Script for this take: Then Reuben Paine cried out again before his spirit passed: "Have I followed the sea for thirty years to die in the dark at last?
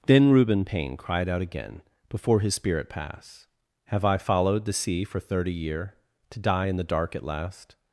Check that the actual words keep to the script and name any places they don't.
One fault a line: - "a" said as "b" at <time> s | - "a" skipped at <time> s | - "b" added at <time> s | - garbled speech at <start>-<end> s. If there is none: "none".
- "passed" said as "pass" at 2.9 s
- "years" said as "year" at 5.5 s